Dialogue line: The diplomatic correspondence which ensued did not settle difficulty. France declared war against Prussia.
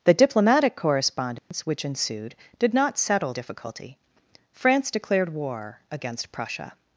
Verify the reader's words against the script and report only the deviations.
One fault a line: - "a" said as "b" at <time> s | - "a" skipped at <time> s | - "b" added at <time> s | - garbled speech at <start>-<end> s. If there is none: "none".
none